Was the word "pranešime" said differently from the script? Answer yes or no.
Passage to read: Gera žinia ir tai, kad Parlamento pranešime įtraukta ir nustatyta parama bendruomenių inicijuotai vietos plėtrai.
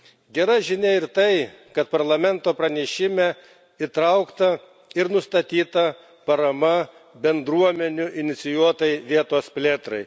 no